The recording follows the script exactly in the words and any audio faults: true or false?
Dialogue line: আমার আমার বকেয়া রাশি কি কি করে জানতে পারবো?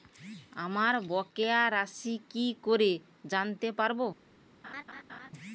false